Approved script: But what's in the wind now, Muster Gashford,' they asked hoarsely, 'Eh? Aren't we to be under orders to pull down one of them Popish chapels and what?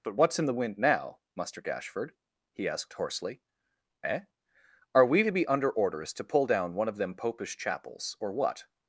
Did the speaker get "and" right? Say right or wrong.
wrong